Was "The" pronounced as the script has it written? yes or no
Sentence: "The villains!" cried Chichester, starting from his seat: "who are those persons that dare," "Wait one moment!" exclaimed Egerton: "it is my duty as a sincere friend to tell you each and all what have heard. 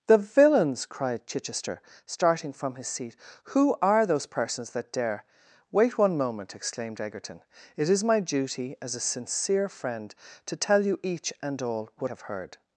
yes